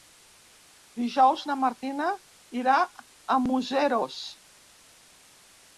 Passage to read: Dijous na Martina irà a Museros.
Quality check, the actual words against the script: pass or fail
pass